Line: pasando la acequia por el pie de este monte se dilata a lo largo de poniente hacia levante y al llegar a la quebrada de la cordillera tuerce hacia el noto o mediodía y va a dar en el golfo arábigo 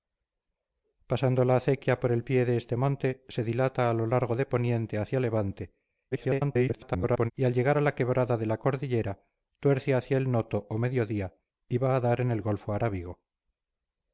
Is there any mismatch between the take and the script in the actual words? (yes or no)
yes